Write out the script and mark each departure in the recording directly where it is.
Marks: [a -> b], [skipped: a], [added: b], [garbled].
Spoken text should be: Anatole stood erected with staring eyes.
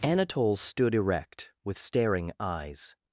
Anatole stood [erected -> erect] with staring eyes.